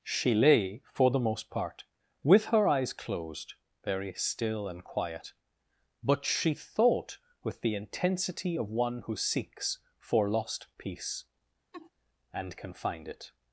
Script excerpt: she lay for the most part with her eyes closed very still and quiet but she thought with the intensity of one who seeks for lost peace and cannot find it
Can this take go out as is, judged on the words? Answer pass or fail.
fail